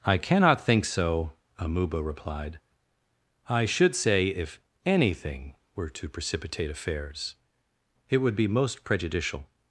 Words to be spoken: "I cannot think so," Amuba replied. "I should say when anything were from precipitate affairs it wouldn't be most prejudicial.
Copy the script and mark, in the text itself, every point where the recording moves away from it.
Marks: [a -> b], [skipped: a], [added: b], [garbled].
"I cannot think so," Amuba replied. "I should say [when -> if] anything were [from -> to] precipitate affairs it [wouldn't -> would] be most prejudicial.